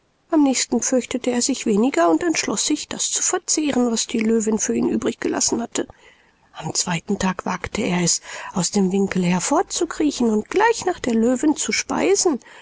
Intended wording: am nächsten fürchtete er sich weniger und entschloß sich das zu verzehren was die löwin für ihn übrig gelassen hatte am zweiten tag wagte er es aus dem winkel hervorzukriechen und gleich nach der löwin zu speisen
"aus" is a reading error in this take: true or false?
false